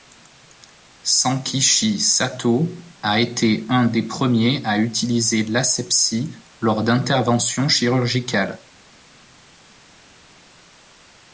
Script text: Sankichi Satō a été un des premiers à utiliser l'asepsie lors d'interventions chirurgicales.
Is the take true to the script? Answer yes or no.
yes